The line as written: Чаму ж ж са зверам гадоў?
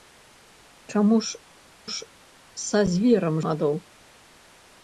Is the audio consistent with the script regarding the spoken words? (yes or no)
yes